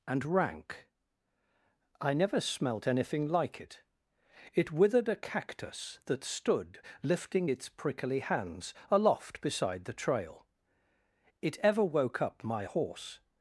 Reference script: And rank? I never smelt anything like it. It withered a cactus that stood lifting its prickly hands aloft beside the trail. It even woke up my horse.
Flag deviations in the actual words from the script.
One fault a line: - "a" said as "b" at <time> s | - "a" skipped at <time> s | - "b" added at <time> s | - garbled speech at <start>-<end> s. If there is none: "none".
- "even" said as "ever" at 11.6 s